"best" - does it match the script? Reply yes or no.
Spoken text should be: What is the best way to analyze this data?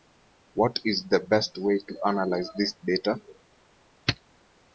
yes